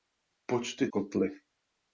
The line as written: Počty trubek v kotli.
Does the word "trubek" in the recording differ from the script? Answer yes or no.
yes